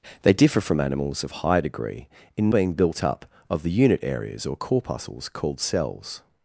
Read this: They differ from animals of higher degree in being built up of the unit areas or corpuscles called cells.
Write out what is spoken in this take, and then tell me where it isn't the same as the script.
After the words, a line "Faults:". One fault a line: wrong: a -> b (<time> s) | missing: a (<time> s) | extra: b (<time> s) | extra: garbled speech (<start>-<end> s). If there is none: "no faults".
They differ from animals of higher degree in being built up of the unit areas or corpuscles called cells.
Faults:
no faults